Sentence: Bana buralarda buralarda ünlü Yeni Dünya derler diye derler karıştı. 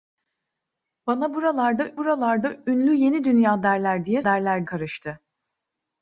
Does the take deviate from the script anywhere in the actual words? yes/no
no